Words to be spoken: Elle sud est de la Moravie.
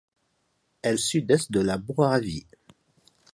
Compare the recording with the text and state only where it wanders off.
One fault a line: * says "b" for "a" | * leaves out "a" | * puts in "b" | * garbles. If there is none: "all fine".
all fine